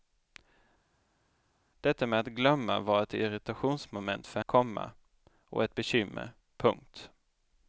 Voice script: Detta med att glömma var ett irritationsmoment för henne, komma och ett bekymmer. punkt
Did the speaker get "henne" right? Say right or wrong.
wrong